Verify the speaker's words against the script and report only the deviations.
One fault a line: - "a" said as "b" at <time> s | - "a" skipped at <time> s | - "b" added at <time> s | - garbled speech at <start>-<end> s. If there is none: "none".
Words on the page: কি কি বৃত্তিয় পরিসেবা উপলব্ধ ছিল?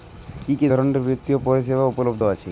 - "ধরনের" added at 0.7 s
- "ছিল" said as "আছে" at 2.2 s